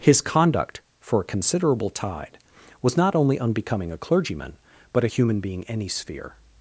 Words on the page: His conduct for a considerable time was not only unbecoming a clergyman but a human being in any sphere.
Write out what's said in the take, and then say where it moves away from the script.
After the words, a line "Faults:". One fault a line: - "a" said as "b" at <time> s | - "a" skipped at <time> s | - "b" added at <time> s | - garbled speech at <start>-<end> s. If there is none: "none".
His conduct for a considerable tide was not only unbecoming a clergyman but a human being any sphere.
Faults:
- "time" said as "tide" at 1.9 s
- "in" skipped at 5.6 s